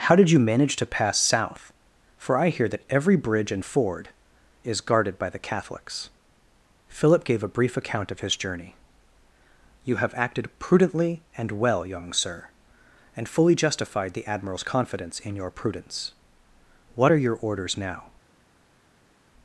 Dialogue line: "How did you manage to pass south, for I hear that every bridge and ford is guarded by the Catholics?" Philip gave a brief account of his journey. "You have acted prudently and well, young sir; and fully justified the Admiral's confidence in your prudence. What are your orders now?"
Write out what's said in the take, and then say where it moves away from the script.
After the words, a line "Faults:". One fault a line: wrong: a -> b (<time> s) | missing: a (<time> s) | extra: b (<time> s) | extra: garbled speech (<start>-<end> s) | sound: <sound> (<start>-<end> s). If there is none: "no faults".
"How did you manage to pass south, for I hear that every bridge and ford is guarded by the Catholics?" Philip gave a brief account of his journey. "You have acted prudently and well, young sir; and fully justified the Admiral's confidence in your prudence. What are your orders now?"
Faults:
no faults